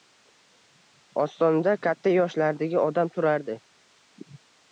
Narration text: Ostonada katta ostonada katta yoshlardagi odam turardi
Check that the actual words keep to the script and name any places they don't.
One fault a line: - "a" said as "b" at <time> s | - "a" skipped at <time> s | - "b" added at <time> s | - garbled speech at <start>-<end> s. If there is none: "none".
- "ostonada katta" skipped at 2.1 s